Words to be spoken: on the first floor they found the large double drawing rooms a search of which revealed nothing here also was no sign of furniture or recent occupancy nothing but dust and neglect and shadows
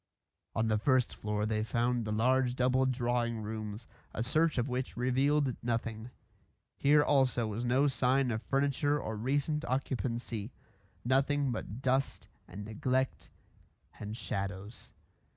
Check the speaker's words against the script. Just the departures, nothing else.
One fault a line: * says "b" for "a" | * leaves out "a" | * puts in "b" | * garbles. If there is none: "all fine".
all fine